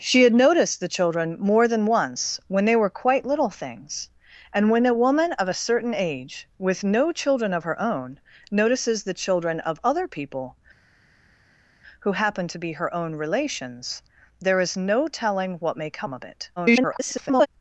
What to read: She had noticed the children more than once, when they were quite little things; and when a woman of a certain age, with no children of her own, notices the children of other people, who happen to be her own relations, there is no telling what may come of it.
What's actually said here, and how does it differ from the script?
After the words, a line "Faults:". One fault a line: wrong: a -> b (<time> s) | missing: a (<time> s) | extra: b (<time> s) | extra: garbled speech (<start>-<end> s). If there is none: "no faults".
She had noticed the children more than once, when they were quite little things; and when a woman of a certain age, with no children of her own, notices the children of other people, who happen to be her own relations, there is no telling what may come of it. [garbled]
Faults:
extra: garbled speech (16.6-17.5 s)